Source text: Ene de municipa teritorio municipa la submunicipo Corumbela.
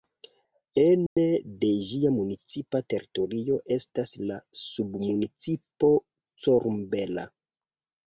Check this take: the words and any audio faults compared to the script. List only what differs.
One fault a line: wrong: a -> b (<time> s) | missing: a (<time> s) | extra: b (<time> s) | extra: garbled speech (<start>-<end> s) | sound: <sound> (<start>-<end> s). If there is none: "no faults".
sound: dropout (1.1-1.2 s)
extra: ĝia (1.9 s)
wrong: municipa -> estas (3.8 s)